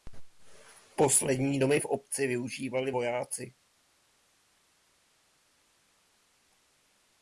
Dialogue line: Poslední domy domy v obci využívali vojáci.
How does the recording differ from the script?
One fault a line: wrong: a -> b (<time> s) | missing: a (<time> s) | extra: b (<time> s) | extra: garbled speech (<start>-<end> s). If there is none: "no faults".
missing: domy (1.8 s)